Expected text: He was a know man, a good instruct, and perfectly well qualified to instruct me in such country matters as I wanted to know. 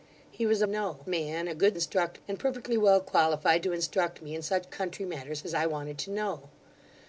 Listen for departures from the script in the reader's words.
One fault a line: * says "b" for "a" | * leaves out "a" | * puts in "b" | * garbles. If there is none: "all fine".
all fine